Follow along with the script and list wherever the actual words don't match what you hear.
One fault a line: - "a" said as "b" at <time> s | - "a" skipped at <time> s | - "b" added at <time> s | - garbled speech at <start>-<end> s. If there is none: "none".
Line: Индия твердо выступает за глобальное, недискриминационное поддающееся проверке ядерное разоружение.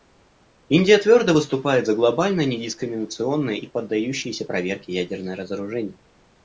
- "и" added at 3.5 s